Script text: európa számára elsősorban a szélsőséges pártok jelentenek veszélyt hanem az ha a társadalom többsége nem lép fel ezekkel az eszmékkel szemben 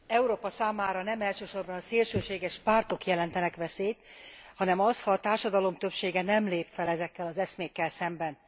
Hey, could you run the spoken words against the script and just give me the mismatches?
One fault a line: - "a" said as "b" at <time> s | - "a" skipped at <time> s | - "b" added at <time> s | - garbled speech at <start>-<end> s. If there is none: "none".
- "nem" added at 1.0 s